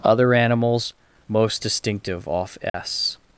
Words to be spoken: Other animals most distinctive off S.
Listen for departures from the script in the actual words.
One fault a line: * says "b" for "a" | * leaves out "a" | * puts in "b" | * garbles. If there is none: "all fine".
all fine